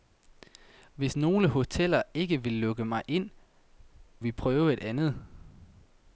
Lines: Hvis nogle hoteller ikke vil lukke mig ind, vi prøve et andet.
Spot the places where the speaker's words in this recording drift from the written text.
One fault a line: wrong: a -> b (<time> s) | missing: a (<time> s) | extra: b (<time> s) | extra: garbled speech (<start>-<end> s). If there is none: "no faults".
no faults